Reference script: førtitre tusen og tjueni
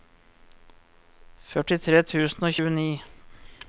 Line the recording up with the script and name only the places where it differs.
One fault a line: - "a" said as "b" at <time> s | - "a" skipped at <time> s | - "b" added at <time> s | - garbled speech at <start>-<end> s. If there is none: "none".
none